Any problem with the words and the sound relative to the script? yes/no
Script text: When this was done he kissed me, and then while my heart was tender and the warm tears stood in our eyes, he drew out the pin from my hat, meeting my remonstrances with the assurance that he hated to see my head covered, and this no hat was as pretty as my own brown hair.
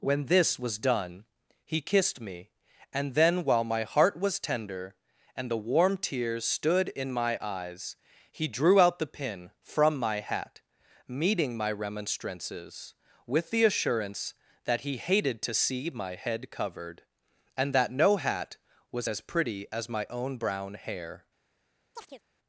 yes